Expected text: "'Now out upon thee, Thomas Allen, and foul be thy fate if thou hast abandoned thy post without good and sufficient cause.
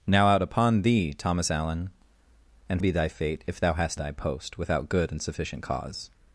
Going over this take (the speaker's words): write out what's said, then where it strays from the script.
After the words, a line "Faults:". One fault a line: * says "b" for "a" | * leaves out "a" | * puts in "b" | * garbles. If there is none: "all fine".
"'Now out upon thee, Thomas Allen, and be thy fate if thou hast thy post without good and sufficient cause.
Faults:
* leaves out "foul"
* leaves out "abandoned"